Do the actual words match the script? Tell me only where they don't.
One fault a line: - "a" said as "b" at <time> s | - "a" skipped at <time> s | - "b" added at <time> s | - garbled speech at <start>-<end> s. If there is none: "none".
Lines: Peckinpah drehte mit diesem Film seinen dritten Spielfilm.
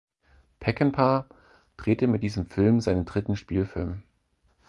none